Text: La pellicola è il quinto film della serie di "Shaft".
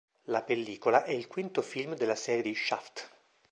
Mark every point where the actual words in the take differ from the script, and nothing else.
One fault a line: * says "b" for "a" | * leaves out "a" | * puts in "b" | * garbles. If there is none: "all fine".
all fine